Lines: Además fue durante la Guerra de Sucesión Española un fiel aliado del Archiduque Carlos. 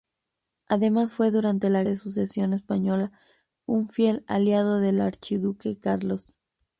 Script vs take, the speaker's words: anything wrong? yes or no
yes